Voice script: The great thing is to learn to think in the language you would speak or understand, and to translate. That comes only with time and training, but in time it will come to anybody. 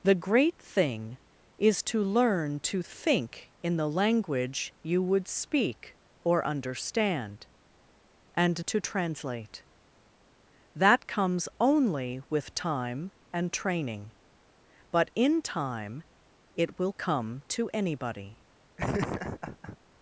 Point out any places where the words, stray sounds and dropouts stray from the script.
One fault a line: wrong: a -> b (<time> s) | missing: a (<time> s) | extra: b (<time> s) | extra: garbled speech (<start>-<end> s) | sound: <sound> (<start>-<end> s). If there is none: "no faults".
sound: laugh (18.8-19.8 s)